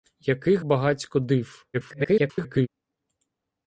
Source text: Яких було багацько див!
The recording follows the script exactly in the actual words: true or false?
false